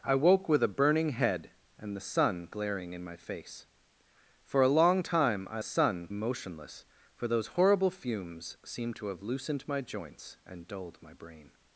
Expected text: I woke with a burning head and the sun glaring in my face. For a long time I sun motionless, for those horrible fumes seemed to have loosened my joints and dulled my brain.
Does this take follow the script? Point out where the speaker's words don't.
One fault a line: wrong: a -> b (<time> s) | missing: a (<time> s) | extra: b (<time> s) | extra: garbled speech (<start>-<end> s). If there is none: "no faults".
no faults